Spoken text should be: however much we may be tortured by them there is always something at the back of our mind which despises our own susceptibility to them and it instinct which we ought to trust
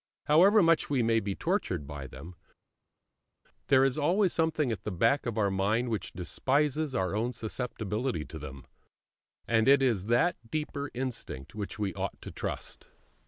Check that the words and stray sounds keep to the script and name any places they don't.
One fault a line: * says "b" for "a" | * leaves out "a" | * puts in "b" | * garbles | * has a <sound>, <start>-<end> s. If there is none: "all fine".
* puts in "is that deeper"